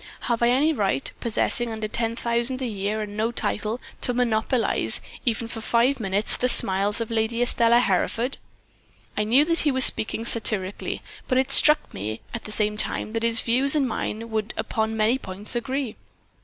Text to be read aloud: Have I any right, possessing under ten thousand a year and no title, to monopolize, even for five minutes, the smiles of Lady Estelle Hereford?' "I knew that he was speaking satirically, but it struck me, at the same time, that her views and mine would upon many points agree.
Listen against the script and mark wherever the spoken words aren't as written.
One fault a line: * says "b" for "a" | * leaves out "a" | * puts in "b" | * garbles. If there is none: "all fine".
* says "his" for "her"